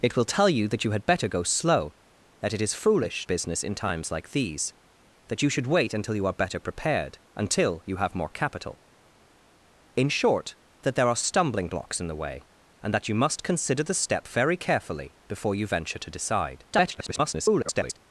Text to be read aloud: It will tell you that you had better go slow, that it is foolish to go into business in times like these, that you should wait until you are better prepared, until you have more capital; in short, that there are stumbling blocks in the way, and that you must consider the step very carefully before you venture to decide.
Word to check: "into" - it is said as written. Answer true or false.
false